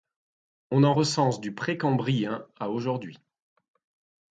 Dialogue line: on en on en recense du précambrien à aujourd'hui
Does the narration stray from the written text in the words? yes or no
yes